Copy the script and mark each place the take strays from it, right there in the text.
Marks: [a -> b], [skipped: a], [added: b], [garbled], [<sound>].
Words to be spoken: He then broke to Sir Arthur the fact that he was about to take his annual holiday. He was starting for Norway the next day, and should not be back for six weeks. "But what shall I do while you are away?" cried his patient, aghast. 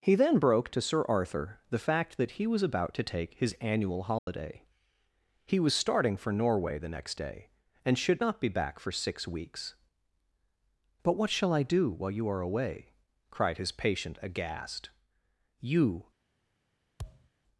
He then broke to Sir Arthur the fact that he was about to take his annual holiday. [dropout] He was starting for Norway the next day, and should not be back for six weeks. "But what shall I do while you are away?" cried his patient, aghast. [added: You] [thud]